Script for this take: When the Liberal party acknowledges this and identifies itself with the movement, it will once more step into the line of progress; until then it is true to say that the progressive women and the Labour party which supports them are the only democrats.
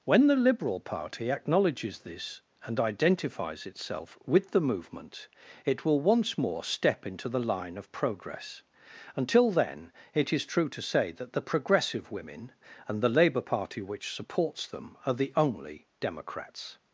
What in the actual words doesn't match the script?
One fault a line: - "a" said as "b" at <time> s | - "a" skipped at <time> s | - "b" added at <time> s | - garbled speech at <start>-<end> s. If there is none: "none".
none